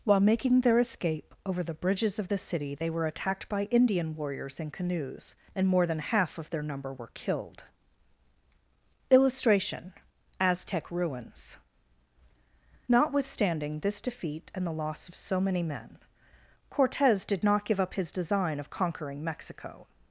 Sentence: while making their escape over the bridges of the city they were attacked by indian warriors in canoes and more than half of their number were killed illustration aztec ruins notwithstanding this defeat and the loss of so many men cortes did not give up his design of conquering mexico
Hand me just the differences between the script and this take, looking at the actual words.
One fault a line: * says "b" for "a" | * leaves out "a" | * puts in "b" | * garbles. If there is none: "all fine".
all fine